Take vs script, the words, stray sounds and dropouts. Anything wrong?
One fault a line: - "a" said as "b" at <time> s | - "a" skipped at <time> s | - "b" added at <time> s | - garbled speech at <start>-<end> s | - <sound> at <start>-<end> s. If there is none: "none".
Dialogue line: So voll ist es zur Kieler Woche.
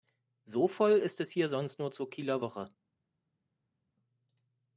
- "hier sonst nur" added at 1.3 s